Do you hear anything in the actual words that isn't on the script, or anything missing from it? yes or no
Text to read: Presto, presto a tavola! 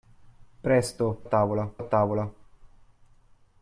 yes